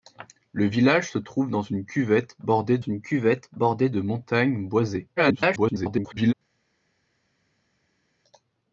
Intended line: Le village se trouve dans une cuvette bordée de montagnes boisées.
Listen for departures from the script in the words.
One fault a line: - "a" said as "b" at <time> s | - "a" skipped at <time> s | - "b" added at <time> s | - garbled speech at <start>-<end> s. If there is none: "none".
- "une cuvette bordée" added at 2.8 s
- garbled speech at 5.2-6.3 s